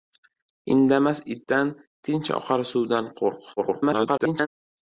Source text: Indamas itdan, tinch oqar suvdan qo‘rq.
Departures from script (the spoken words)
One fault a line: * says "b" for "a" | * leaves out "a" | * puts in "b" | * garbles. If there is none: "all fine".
* garbles